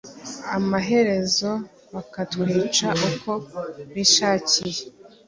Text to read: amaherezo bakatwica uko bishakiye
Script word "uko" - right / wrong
right